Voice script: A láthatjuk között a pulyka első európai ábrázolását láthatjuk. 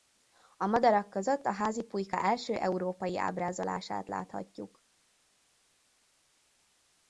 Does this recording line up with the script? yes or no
no